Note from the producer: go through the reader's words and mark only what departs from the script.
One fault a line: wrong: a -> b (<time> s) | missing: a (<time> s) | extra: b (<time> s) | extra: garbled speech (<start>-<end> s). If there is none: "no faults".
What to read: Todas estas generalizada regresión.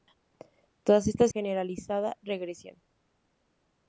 no faults